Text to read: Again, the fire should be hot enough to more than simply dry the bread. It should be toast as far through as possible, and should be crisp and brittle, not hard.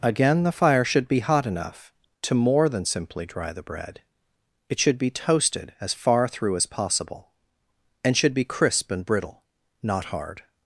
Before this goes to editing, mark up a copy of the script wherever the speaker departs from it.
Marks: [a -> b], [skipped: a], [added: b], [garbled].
Again, the fire should be hot enough to more than simply dry the bread. It should be [toast -> toasted] as far through as possible, and should be crisp and brittle, not hard.